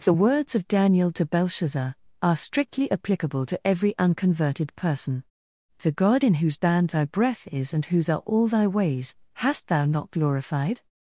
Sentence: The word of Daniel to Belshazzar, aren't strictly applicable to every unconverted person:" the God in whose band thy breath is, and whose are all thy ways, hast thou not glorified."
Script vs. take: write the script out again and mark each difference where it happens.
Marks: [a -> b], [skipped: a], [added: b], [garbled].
The [word -> words] of Daniel to Belshazzar, [aren't -> are] strictly applicable to every unconverted person:" the God in whose band thy breath is, and whose are all thy ways, hast thou not glorified."